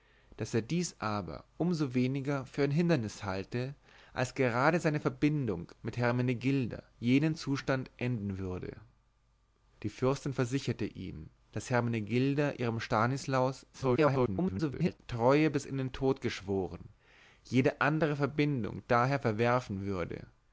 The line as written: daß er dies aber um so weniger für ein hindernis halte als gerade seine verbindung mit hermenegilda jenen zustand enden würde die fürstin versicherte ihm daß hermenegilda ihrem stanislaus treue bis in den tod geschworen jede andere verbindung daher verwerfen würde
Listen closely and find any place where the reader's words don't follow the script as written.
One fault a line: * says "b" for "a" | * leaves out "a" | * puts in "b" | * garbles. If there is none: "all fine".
* garbles